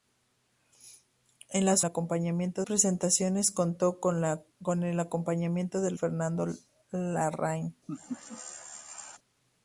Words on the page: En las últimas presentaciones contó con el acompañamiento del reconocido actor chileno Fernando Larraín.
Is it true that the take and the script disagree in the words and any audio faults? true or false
true